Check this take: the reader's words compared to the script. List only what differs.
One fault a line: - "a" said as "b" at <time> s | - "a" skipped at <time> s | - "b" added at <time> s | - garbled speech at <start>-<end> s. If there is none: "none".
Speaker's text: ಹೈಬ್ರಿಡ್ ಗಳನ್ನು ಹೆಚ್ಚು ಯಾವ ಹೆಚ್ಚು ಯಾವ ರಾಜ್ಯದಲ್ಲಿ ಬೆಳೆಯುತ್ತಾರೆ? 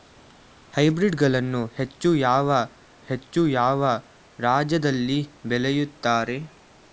none